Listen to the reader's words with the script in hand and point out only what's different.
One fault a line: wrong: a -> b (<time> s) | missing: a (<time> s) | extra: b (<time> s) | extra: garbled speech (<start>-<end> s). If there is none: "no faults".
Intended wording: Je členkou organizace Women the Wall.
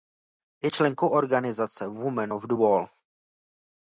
extra: of (2.3 s)